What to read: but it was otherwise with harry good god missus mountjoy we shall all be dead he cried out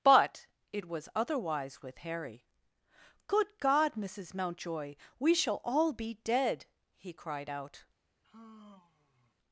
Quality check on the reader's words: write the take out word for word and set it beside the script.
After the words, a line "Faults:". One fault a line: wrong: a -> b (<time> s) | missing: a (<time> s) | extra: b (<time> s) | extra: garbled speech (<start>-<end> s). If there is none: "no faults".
but it was otherwise with harry good god missus mountjoy we shall all be dead he cried out
Faults:
no faults